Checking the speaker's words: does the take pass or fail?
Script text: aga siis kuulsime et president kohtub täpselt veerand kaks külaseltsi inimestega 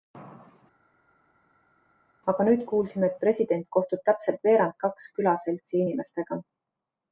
fail